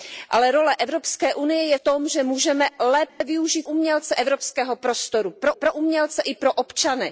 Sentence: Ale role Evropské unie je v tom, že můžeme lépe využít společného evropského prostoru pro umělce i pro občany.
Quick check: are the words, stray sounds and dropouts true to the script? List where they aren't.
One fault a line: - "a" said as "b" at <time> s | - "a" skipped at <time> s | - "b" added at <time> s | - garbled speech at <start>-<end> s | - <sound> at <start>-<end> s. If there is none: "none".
- "v" skipped at 1.8 s
- dropout at 3.1-3.2 s
- "společného" said as "umělce" at 3.7 s
- "pro" added at 5.5 s